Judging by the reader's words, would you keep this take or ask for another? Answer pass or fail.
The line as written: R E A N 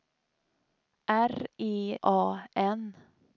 pass